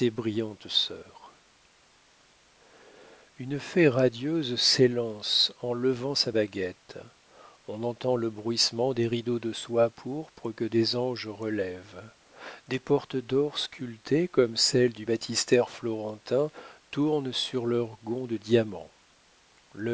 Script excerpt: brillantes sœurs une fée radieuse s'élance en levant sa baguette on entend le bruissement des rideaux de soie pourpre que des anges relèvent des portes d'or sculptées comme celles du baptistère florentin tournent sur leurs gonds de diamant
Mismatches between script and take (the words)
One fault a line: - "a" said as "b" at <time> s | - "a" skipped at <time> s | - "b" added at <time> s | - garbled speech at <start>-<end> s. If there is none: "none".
none